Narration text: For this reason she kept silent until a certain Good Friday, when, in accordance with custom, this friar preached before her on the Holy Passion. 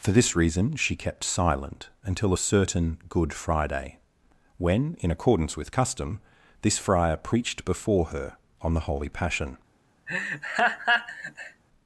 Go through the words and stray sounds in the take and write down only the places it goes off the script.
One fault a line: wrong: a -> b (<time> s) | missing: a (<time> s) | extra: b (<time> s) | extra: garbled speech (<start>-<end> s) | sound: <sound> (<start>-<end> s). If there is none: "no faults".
sound: laugh (10.1-11.6 s)